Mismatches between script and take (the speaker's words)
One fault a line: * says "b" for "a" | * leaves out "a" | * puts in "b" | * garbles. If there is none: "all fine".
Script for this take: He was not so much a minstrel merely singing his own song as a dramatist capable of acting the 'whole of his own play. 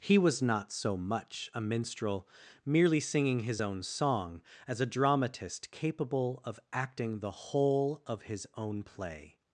all fine